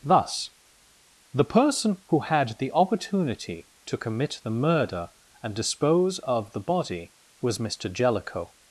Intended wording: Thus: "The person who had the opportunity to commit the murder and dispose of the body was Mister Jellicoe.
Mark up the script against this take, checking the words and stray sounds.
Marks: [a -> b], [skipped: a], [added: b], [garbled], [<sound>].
Thus: "The person who had the opportunity to commit the murder and dispose of the body was Mister Jellicoe.